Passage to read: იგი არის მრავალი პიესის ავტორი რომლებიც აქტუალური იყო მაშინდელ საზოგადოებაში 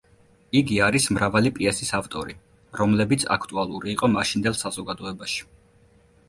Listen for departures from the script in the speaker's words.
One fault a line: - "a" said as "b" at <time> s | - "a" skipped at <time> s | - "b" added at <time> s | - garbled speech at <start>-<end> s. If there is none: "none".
none